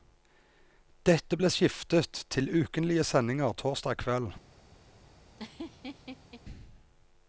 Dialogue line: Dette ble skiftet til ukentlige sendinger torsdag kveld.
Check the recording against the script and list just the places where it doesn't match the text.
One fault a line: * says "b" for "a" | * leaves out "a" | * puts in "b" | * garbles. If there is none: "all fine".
all fine